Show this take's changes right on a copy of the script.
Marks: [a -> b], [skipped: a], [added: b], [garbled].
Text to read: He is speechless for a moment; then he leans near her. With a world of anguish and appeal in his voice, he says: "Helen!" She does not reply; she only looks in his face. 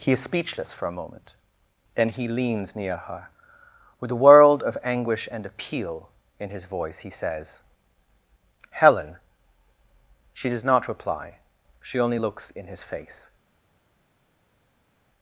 He is speechless for a moment; then he leans near her. With a world of anguish and appeal in his voice, he says: "Helen!" She does not reply; she only looks in his face.